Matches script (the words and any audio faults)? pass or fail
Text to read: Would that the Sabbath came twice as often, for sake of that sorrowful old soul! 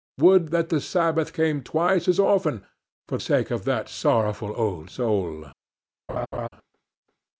fail